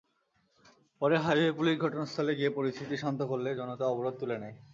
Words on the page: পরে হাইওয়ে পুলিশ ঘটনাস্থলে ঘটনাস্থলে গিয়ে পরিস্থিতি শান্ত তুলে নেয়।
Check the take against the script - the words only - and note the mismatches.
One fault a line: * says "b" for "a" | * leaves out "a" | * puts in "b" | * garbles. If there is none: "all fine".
* leaves out "ঘটনাস্থলে"
* puts in "করলে জনতা অবরোধ"